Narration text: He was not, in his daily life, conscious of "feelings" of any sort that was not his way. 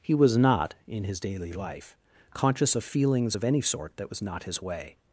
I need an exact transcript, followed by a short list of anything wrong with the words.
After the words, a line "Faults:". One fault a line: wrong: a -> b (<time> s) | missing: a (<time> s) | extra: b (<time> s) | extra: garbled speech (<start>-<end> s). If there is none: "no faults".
He was not, in his daily life, conscious of "feelings" of any sort that was not his way.
Faults:
no faults